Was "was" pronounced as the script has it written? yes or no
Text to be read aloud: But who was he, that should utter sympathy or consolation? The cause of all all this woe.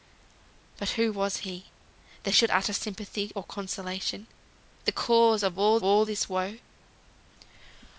yes